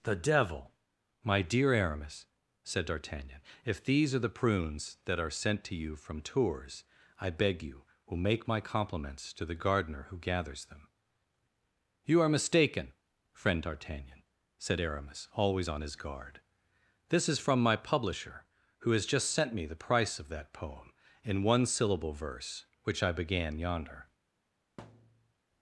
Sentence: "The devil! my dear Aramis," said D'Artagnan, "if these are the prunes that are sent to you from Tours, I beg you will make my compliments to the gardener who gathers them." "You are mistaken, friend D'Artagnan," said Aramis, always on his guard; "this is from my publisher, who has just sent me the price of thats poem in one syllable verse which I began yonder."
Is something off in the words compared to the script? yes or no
yes